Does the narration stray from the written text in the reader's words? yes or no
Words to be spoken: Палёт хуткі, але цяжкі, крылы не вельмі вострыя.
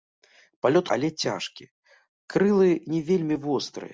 yes